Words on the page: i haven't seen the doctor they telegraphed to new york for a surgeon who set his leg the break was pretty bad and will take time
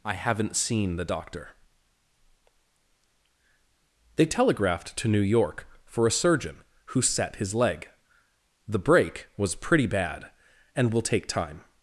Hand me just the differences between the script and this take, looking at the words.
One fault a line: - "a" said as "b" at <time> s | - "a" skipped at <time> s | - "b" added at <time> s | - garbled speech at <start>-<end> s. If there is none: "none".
none